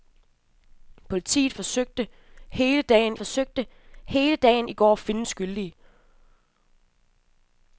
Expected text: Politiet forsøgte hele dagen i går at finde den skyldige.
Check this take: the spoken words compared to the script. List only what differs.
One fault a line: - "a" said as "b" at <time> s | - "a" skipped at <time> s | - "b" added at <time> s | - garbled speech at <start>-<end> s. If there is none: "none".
- "forsøgte hele dagen" added at 3.1 s
- "den" skipped at 5.3 s